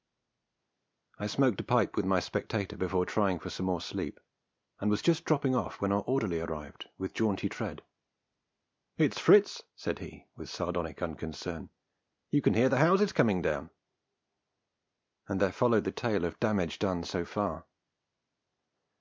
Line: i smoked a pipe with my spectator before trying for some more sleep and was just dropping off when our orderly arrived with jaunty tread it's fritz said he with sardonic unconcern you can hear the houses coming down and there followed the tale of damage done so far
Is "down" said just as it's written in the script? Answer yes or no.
yes